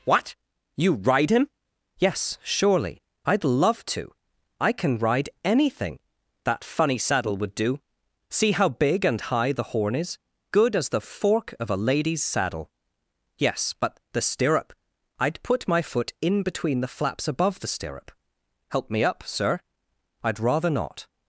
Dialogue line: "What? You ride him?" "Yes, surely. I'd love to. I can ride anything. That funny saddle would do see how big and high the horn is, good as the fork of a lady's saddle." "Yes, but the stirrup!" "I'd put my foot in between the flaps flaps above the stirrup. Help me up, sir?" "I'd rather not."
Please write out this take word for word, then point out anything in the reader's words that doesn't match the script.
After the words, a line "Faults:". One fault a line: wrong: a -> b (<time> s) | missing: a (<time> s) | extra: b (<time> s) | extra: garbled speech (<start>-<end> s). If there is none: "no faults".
"What? You ride him?" "Yes, surely. I'd love to. I can ride anything. That funny saddle would do see how big and high the horn is, good as the fork of a lady's saddle." "Yes, but the stirrup!" "I'd put my foot in between the flaps above the stirrup. Help me up, sir?" "I'd rather not."
Faults:
missing: flaps (17.3 s)